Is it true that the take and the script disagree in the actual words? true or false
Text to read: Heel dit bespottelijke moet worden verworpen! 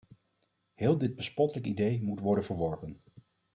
true